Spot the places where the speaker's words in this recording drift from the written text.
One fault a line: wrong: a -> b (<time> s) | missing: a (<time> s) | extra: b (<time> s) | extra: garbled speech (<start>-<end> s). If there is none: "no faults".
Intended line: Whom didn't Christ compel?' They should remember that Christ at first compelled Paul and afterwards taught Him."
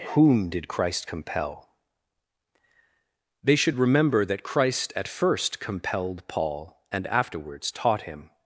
wrong: didn't -> did (0.5 s)